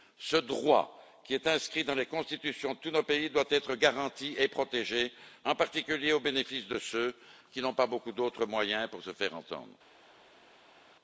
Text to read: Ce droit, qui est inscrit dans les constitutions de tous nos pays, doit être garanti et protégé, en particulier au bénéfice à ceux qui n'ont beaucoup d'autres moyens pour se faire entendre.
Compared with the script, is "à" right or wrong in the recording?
wrong